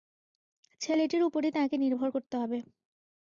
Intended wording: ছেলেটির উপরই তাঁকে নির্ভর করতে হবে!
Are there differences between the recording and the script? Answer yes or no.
no